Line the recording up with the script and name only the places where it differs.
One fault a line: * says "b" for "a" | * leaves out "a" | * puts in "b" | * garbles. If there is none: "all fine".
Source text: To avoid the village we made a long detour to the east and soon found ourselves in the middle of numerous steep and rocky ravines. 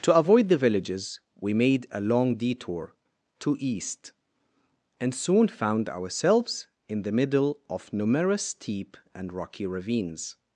* says "villages" for "village"
* leaves out "the"